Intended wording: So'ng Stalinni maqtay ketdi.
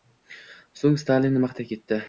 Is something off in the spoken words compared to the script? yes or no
no